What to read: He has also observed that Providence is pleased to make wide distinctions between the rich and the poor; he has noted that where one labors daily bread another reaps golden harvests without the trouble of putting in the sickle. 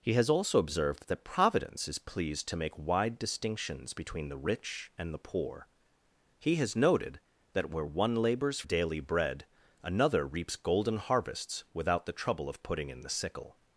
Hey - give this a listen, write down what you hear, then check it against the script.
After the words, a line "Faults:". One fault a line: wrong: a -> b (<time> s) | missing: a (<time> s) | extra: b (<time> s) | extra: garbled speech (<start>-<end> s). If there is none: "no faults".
He has also observed that Providence is pleased to make wide distinctions between the rich and the poor; he has noted that where one labors daily bread another reaps golden harvests without the trouble of putting in the sickle.
Faults:
no faults